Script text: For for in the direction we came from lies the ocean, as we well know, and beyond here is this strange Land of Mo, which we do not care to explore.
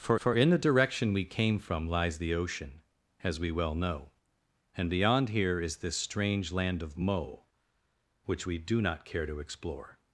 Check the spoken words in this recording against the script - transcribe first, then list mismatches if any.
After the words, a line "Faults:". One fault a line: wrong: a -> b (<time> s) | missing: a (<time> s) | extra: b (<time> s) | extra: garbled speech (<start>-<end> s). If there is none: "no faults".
For for in the direction we came from lies the ocean, as we well know, and beyond here is this strange Land of Mo, which we do not care to explore.
Faults:
no faults